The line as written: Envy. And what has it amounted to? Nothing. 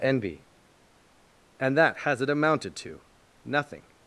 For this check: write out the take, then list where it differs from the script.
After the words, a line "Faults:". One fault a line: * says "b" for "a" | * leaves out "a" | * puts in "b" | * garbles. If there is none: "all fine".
Envy. And that has it amounted to? Nothing.
Faults:
* says "that" for "what"